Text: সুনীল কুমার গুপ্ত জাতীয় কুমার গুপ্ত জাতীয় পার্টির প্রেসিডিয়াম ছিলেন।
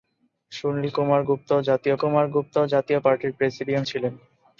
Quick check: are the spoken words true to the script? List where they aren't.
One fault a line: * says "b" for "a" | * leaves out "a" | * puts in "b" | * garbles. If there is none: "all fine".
all fine